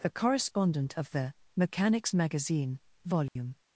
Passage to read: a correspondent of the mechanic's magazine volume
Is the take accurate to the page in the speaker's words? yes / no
no